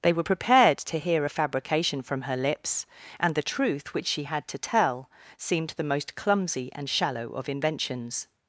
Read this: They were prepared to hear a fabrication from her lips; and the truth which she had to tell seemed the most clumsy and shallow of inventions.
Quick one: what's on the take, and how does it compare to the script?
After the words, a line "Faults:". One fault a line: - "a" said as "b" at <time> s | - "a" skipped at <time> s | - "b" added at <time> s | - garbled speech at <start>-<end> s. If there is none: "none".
They were prepared to hear a fabrication from her lips; and the truth which she had to tell seemed the most clumsy and shallow of inventions.
Faults:
none